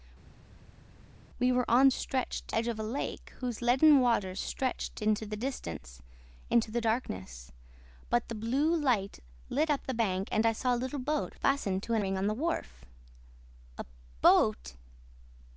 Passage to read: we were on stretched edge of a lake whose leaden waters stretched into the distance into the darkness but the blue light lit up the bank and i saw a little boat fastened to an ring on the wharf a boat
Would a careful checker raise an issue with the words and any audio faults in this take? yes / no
no